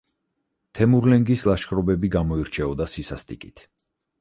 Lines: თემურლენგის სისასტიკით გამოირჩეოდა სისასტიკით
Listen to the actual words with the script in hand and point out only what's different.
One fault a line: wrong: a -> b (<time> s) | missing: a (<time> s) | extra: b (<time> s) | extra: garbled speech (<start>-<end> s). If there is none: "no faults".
wrong: სისასტიკით -> ლაშქრობები (1.5 s)